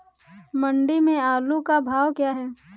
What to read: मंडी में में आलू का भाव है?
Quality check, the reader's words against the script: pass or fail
fail